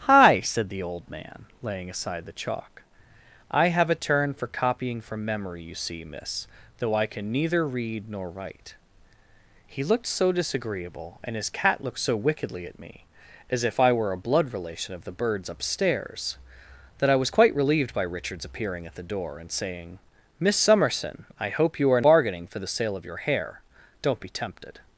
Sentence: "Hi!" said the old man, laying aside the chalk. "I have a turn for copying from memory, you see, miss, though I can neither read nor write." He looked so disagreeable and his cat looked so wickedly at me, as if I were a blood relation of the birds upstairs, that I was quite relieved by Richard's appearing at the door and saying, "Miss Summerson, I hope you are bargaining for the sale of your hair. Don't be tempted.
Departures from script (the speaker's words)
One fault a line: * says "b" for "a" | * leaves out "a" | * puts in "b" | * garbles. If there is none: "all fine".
all fine